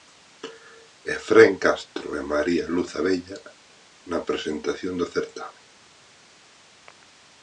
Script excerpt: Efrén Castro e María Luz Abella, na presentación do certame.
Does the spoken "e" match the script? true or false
true